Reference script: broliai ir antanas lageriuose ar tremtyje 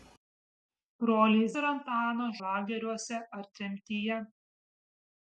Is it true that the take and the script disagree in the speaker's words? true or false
false